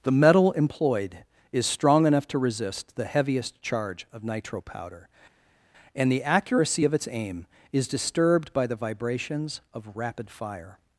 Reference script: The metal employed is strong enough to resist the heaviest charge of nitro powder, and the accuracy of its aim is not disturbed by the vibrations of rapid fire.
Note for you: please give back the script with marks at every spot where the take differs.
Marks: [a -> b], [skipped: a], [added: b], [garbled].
The metal employed is strong enough to resist the heaviest charge of nitro powder, and the accuracy of its aim is [skipped: not] disturbed by the vibrations of rapid fire.